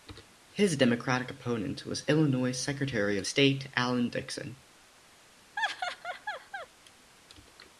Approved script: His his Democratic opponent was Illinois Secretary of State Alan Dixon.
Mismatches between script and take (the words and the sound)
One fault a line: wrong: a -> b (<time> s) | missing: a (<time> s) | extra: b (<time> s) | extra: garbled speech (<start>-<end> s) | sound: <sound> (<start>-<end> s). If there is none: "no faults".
missing: his (0.8 s)
sound: laugh (5.6-6.7 s)